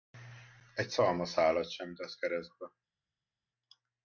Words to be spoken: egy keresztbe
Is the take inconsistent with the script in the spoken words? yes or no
yes